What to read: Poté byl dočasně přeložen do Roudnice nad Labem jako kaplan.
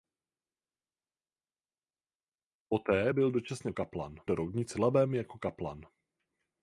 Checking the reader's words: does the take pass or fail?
fail